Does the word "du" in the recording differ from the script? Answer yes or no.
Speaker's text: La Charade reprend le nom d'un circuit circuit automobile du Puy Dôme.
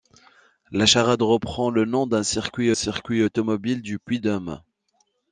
no